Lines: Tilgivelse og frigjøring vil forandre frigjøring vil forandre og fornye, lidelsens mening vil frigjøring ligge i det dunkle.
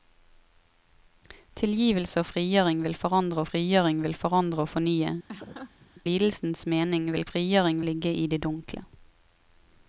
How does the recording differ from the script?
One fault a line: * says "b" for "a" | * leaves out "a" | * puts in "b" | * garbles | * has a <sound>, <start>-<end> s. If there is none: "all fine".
* has a laugh, 5.3-5.9 s